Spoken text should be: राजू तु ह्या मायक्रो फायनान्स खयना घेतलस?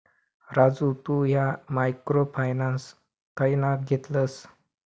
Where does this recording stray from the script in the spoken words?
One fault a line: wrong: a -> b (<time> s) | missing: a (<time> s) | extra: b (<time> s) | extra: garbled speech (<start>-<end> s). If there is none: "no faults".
no faults